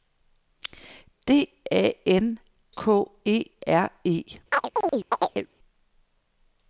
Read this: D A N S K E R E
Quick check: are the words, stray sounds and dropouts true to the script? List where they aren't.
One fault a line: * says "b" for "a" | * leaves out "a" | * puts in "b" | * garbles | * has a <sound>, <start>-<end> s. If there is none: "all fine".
* leaves out "S"
* has a chirp, 4.5-5.5 s